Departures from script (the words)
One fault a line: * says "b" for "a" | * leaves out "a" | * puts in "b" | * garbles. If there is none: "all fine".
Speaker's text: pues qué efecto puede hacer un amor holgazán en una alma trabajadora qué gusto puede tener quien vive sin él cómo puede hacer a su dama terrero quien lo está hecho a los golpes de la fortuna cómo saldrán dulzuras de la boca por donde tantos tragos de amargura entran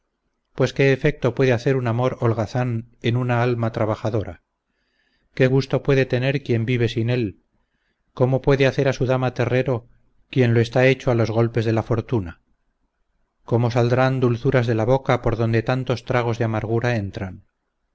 all fine